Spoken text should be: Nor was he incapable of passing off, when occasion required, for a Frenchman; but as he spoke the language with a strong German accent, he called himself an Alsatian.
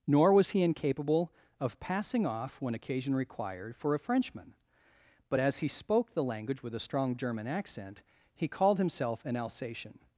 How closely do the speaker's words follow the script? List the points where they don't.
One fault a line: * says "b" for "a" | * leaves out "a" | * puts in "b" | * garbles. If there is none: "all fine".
all fine